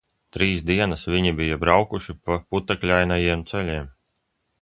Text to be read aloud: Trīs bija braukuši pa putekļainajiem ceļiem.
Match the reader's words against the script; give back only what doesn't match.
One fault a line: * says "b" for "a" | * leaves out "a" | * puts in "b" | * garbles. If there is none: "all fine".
* puts in "dienas viņi"